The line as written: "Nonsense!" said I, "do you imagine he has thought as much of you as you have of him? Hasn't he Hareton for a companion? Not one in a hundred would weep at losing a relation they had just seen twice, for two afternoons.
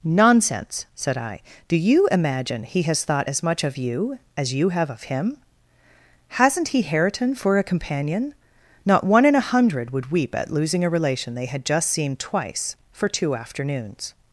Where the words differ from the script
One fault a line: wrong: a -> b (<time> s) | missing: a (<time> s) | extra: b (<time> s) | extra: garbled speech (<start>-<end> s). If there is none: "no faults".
no faults